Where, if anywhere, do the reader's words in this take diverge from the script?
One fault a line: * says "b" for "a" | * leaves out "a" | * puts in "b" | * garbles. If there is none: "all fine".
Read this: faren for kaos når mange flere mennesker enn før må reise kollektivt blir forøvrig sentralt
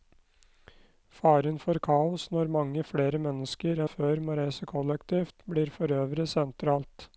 * leaves out "enn"